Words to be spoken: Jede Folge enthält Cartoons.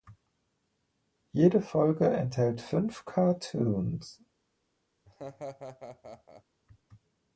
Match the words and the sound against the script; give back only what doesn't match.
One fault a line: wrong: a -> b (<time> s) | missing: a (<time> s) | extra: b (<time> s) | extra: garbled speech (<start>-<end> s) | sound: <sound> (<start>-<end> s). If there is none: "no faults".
extra: fünf (2.6 s)
sound: laugh (5.1-6.4 s)